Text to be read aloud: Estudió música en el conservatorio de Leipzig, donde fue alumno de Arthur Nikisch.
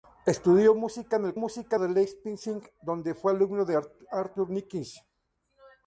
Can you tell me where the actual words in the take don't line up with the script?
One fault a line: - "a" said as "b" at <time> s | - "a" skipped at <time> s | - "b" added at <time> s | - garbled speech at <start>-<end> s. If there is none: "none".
- "conservatorio" said as "música" at 1.3 s